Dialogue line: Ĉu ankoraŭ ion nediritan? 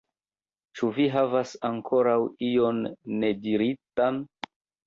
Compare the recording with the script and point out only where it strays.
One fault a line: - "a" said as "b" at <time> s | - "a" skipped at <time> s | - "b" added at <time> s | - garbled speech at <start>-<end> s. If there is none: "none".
- "vi havas" added at 0.9 s